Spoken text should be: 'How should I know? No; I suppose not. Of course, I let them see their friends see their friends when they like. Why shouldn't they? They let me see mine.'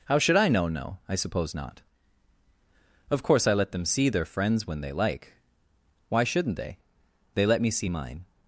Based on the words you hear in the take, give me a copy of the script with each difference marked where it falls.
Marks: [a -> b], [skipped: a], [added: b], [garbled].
'How should I know? No; I suppose not. Of course, I let them see their friends [skipped: see their friends] when they like. Why shouldn't they? They let me see mine.'